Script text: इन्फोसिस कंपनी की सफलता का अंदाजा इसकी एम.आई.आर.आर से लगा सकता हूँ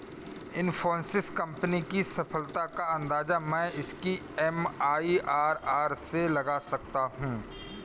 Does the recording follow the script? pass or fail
fail